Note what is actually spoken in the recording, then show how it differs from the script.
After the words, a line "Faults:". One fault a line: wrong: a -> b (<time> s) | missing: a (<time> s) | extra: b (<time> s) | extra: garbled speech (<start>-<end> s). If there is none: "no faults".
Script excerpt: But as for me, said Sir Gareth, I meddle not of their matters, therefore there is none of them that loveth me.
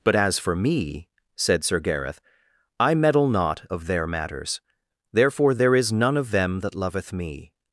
But as for me, said Sir Gareth, I meddle not of their matters, therefore there is none of them that loveth me.
Faults:
no faults